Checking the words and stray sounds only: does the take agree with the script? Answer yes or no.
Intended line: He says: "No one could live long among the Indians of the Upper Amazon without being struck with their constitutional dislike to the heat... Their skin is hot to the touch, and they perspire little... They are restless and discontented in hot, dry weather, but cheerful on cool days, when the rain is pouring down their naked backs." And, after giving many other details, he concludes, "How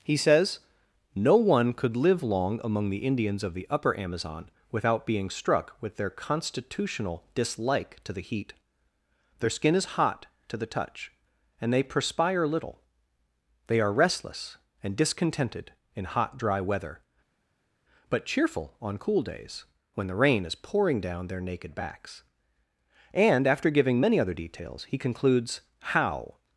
yes